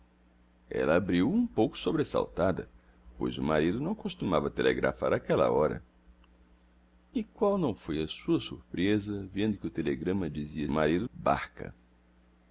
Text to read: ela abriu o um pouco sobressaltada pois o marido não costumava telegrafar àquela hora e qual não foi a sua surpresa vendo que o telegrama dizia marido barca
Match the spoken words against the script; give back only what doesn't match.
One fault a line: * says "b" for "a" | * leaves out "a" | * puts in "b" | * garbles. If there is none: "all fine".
all fine